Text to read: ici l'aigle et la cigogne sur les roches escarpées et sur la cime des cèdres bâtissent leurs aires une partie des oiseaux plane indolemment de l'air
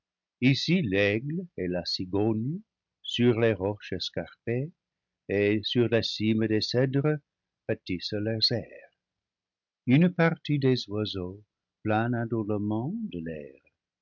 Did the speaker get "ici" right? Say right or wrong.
right